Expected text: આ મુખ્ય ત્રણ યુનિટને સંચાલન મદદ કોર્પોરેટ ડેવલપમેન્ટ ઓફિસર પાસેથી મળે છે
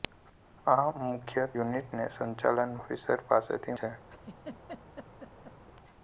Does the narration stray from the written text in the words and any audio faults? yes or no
yes